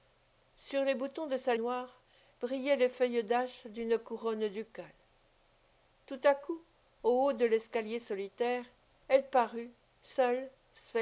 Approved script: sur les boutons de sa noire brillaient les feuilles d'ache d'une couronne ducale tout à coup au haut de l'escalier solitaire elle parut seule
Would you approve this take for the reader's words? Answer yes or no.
yes